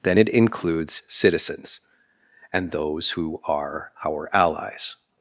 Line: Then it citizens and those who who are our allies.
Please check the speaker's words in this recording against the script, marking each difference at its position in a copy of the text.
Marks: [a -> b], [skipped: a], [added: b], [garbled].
Then it [added: includes] citizens and those who [skipped: who] are our allies.